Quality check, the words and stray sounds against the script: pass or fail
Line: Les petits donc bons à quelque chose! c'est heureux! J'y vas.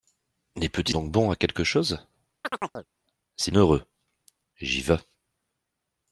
fail